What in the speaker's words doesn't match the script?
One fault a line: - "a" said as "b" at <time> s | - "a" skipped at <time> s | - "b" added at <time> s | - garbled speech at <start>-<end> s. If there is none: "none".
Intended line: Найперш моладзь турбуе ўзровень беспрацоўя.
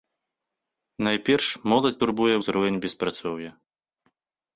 none